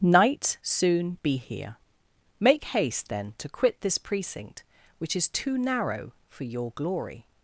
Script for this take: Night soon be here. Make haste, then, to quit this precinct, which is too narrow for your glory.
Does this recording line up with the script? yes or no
yes